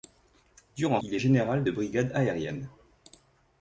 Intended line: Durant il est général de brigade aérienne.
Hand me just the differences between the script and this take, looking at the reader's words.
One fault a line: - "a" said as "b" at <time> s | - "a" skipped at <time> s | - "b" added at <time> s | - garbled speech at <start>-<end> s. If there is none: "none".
none